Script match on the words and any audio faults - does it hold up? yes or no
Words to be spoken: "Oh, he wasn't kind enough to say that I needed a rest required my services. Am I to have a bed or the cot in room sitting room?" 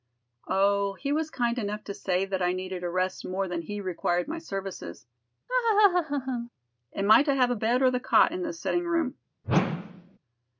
no